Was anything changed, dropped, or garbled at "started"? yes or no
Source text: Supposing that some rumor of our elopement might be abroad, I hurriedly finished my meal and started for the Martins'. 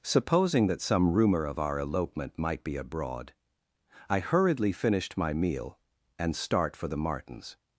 yes